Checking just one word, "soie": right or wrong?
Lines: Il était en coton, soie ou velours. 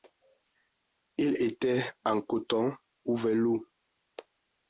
wrong